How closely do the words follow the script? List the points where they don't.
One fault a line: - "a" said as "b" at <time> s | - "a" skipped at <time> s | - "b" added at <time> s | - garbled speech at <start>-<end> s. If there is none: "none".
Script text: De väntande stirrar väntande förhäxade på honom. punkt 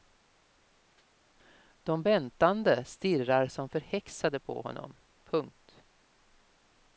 - "väntande" said as "som" at 3.5 s